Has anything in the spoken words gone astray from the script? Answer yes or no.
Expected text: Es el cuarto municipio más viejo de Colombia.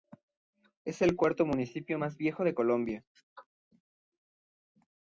no